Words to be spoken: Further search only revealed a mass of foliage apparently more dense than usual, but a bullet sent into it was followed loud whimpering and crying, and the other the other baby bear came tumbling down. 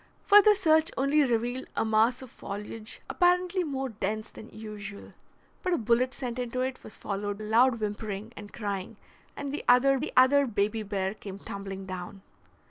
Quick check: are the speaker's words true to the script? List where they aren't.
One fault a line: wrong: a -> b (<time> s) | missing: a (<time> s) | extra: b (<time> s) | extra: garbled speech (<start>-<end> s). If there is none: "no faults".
no faults